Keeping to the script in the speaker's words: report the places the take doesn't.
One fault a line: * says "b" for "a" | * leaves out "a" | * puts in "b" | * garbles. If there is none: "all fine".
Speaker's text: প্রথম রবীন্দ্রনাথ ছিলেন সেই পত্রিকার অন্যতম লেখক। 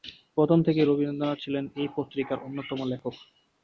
* puts in "থেকেই"
* says "এই" for "সেই"